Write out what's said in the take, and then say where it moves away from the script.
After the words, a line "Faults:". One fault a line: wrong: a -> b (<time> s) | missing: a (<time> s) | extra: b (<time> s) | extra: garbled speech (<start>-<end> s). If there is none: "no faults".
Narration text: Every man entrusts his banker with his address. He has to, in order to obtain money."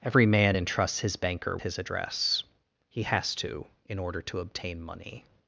Every man entrusts his banker his address. He has to, in order to obtain money."
Faults:
missing: with (1.6 s)